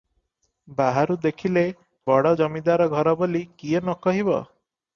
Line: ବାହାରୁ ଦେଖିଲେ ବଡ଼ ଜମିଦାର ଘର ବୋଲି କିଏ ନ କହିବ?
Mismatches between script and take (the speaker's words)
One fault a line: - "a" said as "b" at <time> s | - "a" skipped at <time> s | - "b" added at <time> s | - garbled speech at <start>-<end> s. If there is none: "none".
none